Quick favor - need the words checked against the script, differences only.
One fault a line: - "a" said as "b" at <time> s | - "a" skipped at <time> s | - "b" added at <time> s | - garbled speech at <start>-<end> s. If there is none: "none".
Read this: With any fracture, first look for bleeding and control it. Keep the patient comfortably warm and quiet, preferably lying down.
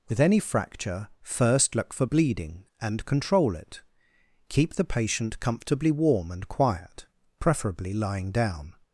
none